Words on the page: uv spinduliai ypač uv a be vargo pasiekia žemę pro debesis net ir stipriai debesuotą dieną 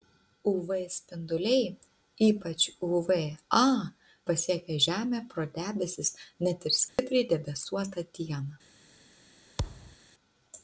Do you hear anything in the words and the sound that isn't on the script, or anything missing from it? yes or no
yes